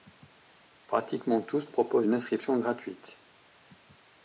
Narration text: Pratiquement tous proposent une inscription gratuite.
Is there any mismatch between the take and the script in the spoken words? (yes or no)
no